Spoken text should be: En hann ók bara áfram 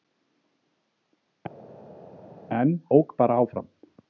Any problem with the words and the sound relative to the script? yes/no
yes